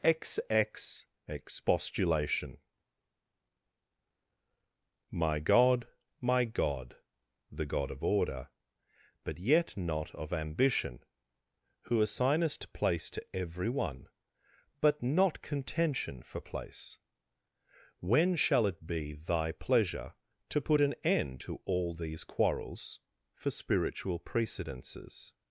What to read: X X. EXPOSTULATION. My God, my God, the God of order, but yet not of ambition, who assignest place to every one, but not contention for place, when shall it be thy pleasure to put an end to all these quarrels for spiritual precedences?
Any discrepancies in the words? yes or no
no